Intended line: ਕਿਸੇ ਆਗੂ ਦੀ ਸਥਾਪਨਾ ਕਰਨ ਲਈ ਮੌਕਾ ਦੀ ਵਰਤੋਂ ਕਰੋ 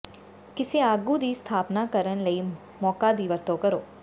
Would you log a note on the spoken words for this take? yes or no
no